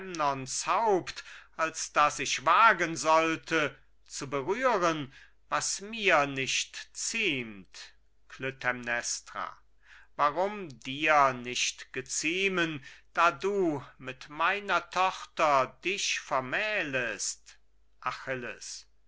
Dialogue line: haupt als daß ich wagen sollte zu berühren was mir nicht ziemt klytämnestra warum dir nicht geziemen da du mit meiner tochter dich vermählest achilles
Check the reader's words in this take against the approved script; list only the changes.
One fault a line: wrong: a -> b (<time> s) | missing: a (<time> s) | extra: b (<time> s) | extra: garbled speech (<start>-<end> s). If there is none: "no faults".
no faults